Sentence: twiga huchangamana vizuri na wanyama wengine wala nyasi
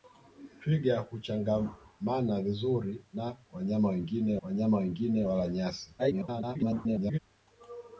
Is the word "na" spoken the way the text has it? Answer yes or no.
yes